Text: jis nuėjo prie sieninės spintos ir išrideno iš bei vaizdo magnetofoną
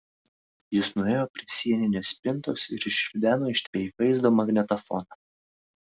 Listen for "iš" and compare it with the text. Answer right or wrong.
right